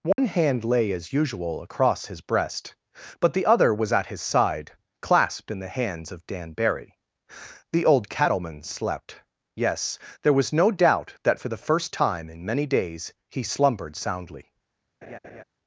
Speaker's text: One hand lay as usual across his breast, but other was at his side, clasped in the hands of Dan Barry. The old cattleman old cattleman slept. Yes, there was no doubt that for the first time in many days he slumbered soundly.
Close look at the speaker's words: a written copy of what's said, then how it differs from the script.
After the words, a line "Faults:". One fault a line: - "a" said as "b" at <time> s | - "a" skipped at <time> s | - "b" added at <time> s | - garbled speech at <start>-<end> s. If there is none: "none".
One hand lay as usual across his breast, but the other was at his side, clasped in the hands of Dan Barry. The old cattleman slept. Yes, there was no doubt that for the first time in many days he slumbered soundly.
Faults:
- "the" added at 3.3 s
- "old cattleman" skipped at 8.6 s